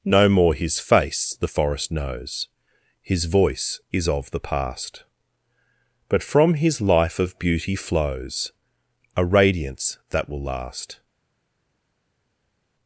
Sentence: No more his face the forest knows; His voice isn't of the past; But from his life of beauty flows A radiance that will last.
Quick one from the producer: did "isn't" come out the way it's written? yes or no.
no